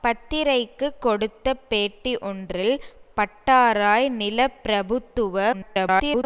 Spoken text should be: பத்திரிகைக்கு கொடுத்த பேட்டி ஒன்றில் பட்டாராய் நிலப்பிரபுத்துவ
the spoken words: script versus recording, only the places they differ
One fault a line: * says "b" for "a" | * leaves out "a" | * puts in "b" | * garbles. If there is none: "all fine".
* garbles